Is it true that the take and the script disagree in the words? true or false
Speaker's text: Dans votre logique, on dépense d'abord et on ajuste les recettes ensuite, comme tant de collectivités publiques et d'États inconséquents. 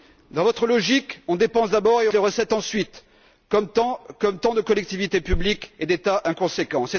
true